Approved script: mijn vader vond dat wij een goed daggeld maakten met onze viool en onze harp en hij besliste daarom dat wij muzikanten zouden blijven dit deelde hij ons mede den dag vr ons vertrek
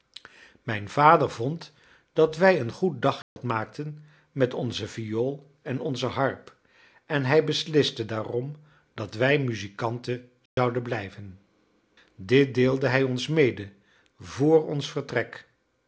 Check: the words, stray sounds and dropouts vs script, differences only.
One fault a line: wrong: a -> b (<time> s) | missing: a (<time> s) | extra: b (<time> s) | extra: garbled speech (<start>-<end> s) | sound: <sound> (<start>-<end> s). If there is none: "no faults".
sound: dropout (3.2-3.4 s)
sound: dropout (10.5-10.6 s)
missing: den dag (13.7 s)